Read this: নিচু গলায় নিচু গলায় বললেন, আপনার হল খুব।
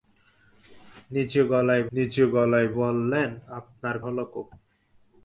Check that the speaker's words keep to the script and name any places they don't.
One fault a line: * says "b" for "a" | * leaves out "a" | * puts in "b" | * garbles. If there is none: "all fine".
all fine